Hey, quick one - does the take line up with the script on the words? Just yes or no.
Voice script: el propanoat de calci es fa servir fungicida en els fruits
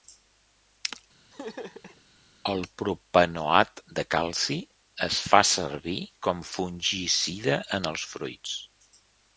no